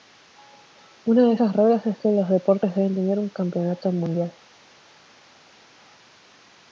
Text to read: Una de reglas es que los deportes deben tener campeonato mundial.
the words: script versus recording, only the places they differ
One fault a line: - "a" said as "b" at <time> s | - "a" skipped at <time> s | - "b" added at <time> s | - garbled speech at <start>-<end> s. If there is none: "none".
- "esas" added at 1.3 s
- "un" added at 3.2 s